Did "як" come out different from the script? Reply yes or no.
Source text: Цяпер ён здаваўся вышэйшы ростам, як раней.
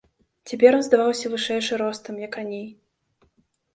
no